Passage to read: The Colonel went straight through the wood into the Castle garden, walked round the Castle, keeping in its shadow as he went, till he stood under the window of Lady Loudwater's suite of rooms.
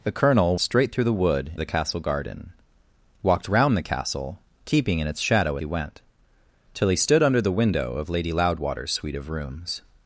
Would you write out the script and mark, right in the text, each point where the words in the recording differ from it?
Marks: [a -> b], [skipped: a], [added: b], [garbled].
The Colonel [skipped: went] straight through the wood [skipped: into] the Castle garden, walked round the Castle, keeping in its shadow [skipped: as] he went, till he stood under the window of Lady Loudwater's suite of rooms.